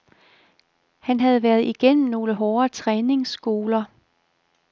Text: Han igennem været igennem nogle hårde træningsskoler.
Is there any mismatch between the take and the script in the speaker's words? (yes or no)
yes